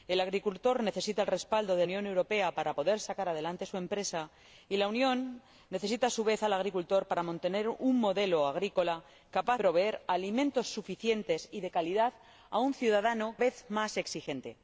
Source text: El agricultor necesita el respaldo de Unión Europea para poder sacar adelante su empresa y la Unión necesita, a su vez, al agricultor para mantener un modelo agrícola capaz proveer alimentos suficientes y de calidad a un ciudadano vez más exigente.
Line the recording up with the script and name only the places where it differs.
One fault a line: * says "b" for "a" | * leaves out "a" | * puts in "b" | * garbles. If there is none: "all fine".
all fine